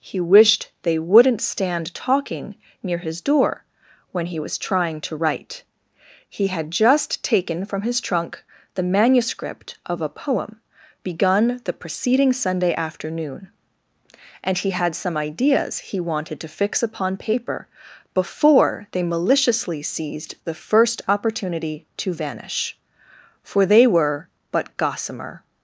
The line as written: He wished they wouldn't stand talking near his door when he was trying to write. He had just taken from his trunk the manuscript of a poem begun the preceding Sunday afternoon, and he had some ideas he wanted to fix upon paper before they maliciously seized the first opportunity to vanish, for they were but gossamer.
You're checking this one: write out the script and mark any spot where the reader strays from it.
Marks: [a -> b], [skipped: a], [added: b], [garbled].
He wished they wouldn't stand talking near his door when he was trying to write. He had just taken from his trunk the manuscript of a poem begun the preceding Sunday afternoon, and he had some ideas he wanted to fix upon paper before they maliciously seized the first opportunity to vanish, for they were but gossamer.